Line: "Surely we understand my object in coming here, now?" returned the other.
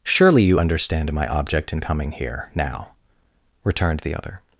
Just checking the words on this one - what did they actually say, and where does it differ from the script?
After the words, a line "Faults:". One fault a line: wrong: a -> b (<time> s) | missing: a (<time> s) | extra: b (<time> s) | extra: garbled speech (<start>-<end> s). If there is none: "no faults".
"Surely you understand my object in coming here, now?" returned the other.
Faults:
wrong: we -> you (0.4 s)